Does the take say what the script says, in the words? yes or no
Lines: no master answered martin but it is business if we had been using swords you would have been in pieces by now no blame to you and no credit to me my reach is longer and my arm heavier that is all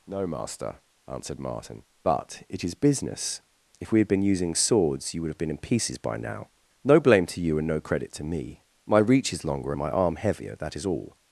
yes